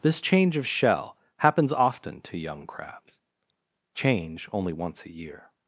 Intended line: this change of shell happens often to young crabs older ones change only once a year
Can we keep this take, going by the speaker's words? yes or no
no